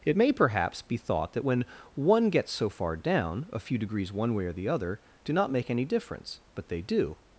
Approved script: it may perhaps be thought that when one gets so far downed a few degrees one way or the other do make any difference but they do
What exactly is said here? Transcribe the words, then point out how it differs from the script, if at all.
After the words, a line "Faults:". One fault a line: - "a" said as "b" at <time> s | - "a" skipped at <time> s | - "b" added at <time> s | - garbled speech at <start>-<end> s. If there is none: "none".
it may perhaps be thought that when one gets so far down a few degrees one way or the other do not make any difference but they do
Faults:
- "downed" said as "down" at 3.0 s
- "not" added at 5.3 s